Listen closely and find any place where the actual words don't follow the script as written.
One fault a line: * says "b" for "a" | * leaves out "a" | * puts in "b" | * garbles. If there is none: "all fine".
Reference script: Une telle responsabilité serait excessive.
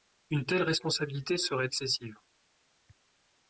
all fine